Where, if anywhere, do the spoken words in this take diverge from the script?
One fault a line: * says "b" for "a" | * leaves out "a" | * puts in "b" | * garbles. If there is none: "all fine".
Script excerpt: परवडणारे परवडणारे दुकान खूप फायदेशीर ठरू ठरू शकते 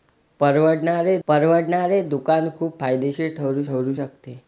all fine